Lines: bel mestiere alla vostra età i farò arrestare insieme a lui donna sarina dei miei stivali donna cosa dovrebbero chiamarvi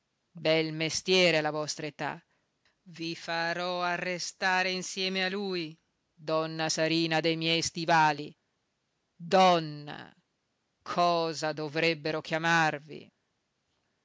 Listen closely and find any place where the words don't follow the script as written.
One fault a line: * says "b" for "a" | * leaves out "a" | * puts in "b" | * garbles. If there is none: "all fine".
all fine